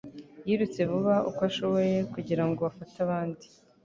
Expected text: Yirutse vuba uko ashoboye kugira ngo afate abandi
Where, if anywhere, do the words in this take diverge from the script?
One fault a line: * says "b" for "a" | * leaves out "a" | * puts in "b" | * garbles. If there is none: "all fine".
all fine